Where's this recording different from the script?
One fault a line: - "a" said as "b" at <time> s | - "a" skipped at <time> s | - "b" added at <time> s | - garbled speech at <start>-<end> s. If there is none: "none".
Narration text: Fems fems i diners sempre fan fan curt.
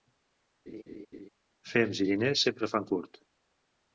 - "fems" skipped at 2.0 s
- "fan" skipped at 2.9 s